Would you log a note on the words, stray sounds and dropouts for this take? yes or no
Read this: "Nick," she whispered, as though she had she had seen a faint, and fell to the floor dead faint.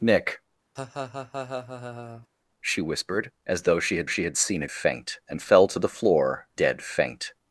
yes